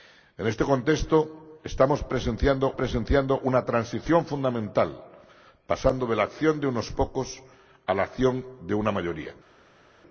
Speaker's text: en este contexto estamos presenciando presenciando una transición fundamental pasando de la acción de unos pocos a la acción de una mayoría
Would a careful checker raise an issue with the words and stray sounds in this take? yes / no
no